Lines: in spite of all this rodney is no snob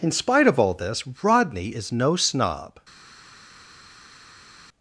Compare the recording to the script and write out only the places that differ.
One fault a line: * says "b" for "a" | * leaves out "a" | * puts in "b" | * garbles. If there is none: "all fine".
all fine